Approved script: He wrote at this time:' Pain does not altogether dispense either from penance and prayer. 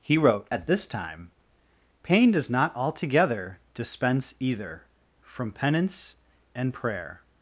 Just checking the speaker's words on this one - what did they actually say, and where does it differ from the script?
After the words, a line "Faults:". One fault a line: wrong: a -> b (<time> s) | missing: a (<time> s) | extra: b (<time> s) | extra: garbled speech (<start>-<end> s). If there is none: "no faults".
He wrote at this time:' Pain does not altogether dispense either from penance and prayer.
Faults:
no faults